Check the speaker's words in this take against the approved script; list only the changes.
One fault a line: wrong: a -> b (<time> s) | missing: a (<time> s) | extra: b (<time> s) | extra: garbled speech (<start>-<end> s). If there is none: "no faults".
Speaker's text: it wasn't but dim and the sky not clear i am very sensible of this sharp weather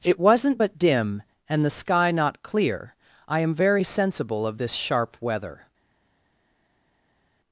no faults